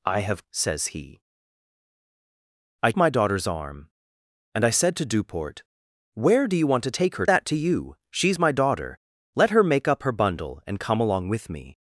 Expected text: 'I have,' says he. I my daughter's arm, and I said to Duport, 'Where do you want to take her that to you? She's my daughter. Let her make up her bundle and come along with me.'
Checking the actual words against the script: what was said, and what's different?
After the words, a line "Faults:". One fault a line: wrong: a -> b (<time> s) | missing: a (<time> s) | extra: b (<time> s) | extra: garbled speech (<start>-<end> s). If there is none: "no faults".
'I have,' says he. I my daughter's arm, and I said to Duport, 'Where do you want to take her that to you? She's my daughter. Let her make up her bundle and come along with me.'
Faults:
no faults